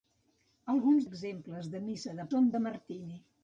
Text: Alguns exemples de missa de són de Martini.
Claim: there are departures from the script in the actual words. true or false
false